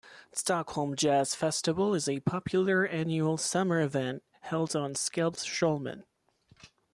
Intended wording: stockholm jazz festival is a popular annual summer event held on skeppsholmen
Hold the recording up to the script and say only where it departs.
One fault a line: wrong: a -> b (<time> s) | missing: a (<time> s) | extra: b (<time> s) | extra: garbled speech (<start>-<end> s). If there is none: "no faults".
no faults